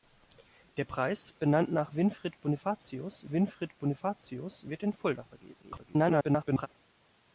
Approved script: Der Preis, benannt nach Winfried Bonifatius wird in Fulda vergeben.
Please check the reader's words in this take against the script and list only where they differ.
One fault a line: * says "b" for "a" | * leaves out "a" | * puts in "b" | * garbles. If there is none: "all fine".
* puts in "Winfried Bonifatius"
* garbles